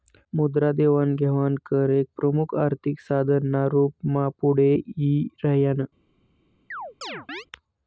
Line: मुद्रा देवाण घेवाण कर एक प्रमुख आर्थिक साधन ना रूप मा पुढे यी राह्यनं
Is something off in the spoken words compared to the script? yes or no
no